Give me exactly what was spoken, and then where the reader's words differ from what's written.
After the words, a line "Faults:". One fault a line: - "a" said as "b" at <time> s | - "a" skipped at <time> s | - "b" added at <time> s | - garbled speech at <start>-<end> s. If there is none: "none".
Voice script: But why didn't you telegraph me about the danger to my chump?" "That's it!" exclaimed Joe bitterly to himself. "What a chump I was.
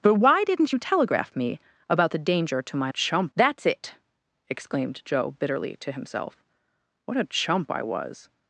But why didn't you telegraph me about the danger to my chump?" "That's it!" exclaimed Joe bitterly to himself. "What a chump I was.
Faults:
none